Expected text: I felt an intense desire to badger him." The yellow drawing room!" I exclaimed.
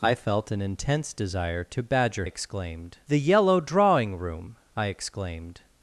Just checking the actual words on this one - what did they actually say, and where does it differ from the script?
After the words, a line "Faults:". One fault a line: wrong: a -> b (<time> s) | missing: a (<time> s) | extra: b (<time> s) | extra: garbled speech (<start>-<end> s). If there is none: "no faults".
I felt an intense desire to badger exclaimed." The yellow drawing room!" I exclaimed.
Faults:
wrong: him -> exclaimed (2.2 s)